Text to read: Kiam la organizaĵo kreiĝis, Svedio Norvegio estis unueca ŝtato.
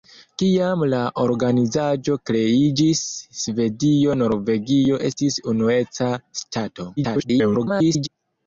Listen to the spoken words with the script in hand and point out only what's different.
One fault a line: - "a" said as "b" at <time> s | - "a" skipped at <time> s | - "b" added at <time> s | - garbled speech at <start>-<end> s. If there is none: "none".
- garbled speech at 7.0-8.1 s